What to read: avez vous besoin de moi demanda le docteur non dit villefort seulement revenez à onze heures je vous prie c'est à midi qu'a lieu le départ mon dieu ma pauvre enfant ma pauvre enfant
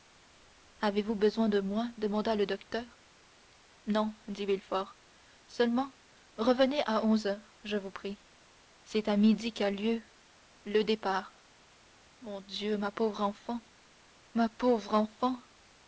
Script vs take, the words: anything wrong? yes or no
no